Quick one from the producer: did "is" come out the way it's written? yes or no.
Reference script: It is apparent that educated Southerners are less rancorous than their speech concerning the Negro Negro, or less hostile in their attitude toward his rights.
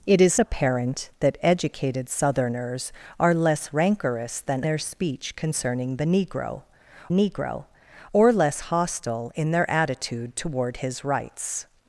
yes